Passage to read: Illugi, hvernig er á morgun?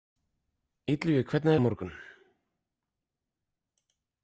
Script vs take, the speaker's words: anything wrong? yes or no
no